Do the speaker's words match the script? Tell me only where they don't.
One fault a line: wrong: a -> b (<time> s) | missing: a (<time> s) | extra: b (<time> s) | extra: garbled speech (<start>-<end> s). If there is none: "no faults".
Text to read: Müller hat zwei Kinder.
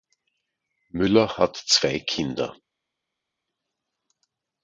no faults